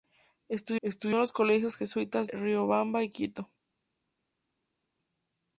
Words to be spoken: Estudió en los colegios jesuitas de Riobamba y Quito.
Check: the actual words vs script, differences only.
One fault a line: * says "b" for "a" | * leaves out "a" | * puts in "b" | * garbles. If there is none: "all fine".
* puts in "estudió"
* leaves out "de"